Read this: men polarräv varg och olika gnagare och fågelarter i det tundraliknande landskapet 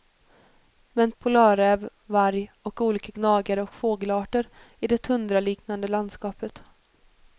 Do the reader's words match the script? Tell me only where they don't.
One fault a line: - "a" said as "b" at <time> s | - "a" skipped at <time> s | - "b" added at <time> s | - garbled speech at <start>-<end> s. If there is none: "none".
none